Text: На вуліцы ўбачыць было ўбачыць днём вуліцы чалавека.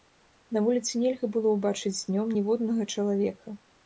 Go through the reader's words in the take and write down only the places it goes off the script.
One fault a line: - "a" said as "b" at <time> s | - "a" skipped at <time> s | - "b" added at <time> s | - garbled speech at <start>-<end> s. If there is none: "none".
- "ўбачыць" said as "нельга" at 1.0 s
- "вуліцы" said as "ніводнага" at 2.4 s